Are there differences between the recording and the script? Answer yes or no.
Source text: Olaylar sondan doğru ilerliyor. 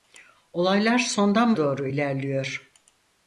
no